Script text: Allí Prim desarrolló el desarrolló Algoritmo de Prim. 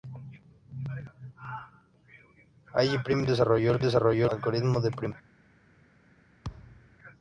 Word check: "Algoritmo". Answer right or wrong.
right